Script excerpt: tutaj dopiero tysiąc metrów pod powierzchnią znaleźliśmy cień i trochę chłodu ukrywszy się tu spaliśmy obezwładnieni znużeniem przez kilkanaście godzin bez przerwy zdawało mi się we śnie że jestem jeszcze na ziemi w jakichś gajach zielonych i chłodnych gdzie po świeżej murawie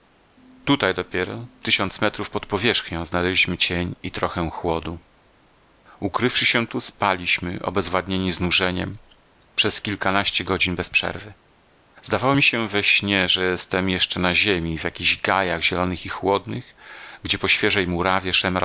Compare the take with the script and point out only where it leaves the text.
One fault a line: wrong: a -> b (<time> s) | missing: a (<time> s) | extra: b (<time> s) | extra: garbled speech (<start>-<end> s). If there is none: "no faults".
no faults